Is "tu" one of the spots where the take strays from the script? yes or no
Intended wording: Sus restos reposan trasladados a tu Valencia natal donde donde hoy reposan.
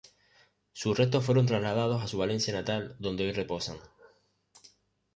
yes